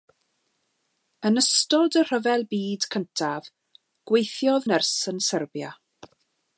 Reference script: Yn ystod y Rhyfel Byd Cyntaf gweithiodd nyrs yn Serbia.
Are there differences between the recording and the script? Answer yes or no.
no